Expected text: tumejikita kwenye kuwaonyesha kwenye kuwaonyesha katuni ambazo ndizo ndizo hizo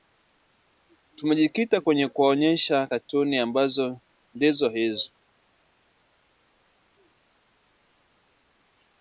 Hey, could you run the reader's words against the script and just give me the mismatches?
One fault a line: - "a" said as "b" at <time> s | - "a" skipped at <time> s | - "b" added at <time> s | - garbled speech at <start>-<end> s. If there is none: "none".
- "kwenye kuwaonyesha" skipped at 2.9 s
- "ndizo" skipped at 4.7 s